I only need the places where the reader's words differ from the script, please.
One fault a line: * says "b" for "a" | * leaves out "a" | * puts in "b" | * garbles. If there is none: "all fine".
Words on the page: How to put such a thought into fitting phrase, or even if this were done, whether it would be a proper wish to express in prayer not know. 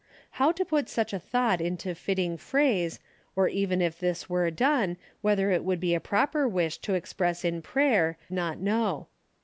all fine